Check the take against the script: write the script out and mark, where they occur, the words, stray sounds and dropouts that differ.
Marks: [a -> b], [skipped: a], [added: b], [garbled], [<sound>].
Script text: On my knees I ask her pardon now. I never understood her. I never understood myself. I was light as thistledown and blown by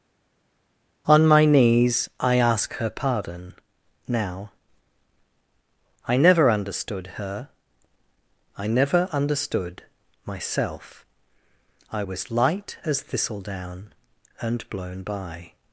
On my knees I ask her pardon now. I never understood her. I never understood myself. I was light as thistledown and blown by